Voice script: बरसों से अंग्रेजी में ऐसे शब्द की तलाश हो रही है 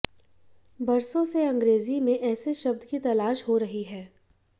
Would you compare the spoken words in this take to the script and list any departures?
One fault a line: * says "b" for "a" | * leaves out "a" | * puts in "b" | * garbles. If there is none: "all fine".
all fine